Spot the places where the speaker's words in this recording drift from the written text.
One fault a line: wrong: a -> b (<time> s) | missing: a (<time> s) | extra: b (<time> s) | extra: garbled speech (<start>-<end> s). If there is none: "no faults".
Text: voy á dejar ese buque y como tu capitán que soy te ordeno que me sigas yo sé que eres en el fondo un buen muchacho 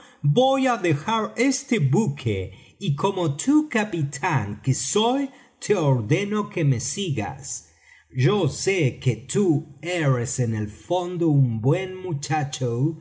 wrong: ese -> este (1.4 s)
extra: tú (9.2 s)